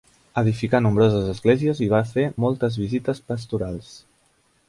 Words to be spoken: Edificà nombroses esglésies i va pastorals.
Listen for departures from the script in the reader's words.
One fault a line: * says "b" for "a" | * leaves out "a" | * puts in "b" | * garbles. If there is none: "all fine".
* puts in "fer moltes visites"